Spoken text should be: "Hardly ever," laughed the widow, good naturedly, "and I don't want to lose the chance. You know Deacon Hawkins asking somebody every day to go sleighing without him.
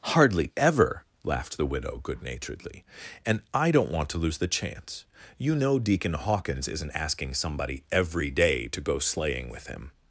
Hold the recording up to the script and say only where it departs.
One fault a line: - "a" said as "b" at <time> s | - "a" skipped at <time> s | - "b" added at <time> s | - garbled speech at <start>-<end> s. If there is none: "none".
- "isn't" added at 6.7 s
- "without" said as "with" at 9.5 s